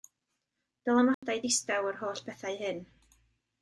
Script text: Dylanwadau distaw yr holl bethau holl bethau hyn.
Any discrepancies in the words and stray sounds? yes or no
yes